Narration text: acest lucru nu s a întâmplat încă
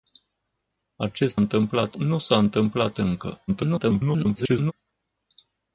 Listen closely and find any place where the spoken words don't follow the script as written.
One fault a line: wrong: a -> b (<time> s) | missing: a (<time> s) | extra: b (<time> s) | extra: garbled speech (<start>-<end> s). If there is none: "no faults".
wrong: lucru -> întâmplat (1.4 s)
extra: garbled speech (3.5-4.7 s)